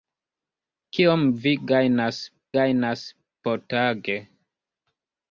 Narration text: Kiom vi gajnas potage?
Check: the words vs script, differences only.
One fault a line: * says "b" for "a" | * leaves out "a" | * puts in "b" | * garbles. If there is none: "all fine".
* puts in "gajnas"